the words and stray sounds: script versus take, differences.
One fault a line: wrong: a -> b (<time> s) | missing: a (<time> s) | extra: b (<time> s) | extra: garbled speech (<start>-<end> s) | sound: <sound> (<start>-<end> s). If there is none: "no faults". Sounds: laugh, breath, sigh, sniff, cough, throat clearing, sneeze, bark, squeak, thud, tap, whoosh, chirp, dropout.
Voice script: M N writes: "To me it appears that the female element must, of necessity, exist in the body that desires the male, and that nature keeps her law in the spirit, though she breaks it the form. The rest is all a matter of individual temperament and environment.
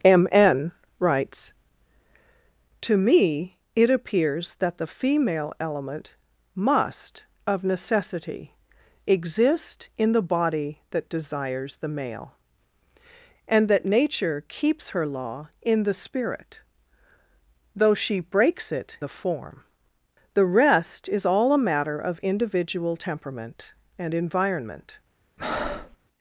sound: breath (25.4-26.0 s)